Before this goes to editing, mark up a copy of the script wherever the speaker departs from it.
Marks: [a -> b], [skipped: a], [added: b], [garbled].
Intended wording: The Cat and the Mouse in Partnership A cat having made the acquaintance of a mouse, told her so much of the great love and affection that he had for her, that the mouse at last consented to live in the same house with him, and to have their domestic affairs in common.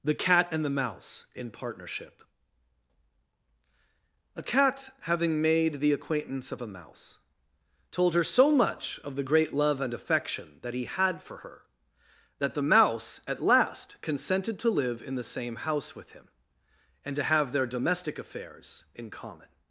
The Cat and the Mouse in Partnership A cat having made the acquaintance of a mouse, told her so much of the great love and affection that he had for her, that the mouse at last consented to live in the same house with him, and to have their domestic affairs in common.